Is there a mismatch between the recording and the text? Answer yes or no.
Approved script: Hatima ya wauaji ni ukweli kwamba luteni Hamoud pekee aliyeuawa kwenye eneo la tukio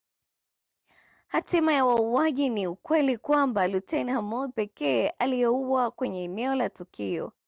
no